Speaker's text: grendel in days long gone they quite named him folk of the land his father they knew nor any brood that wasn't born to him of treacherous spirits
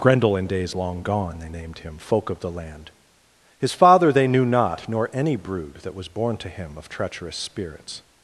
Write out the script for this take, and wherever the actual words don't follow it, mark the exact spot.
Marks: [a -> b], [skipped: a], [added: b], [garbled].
grendel in days long gone they [skipped: quite] named him folk of the land his father they knew [added: not] nor any brood that [wasn't -> was] born to him of treacherous spirits